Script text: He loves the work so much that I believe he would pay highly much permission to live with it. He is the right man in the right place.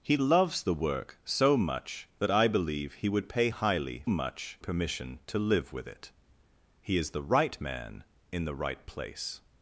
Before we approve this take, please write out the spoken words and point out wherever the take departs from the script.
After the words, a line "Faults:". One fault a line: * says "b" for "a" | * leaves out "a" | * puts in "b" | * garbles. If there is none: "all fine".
He loves the work so much that I believe he would pay highly much permission to live with it. He is the right man in the right place.
Faults:
all fine